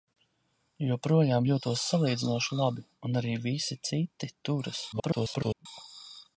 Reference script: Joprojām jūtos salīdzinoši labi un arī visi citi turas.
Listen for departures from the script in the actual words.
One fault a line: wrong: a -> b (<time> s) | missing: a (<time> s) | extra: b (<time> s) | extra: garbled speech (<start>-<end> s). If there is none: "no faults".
extra: garbled speech (4.9-5.7 s)